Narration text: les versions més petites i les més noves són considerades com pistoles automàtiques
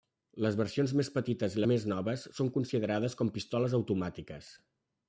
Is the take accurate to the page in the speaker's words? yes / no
no